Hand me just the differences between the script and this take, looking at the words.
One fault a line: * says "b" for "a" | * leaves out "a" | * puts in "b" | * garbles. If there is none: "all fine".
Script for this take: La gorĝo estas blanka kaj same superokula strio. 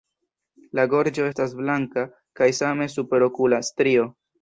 all fine